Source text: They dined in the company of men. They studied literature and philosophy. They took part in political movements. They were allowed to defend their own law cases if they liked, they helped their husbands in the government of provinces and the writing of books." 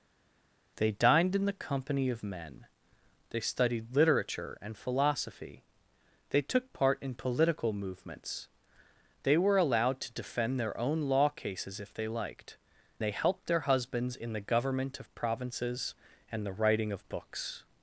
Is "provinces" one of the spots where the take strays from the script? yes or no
no